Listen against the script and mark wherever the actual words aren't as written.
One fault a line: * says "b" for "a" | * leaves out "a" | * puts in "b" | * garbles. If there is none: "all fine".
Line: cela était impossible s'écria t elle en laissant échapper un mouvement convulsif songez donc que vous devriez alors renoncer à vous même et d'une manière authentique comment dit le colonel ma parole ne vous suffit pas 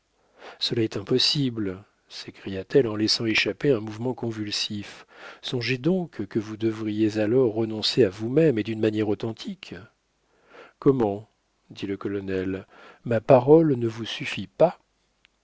* says "est" for "était"